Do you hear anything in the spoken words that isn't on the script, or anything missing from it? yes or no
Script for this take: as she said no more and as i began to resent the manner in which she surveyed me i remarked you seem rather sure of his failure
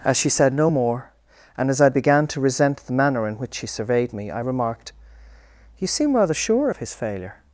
no